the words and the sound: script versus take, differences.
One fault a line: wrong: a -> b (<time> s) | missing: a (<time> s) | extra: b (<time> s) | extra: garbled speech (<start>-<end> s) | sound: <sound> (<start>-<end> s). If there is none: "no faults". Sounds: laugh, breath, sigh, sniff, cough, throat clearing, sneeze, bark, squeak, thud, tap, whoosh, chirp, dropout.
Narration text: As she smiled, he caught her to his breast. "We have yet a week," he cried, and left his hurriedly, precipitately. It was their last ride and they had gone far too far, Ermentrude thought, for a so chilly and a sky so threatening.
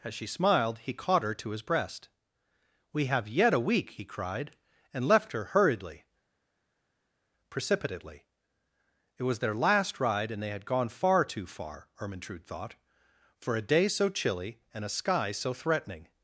wrong: his -> her (5.3 s)
extra: day (13.7 s)